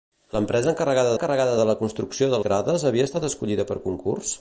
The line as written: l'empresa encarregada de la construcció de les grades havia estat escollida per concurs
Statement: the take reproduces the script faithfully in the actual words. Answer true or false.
false